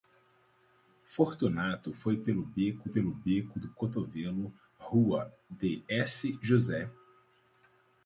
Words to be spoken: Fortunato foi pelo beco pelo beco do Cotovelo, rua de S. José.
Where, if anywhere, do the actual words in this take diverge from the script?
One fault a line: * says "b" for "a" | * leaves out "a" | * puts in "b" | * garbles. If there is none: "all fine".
all fine